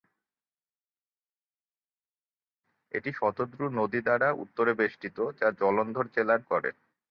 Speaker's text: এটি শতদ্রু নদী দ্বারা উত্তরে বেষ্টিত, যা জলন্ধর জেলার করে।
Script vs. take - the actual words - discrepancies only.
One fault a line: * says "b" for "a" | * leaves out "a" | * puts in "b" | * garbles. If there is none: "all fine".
all fine